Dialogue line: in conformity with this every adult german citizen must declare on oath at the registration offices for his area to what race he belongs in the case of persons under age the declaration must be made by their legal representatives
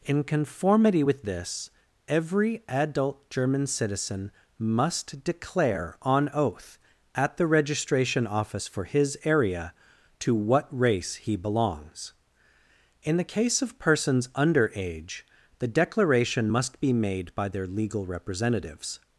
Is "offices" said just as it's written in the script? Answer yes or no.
no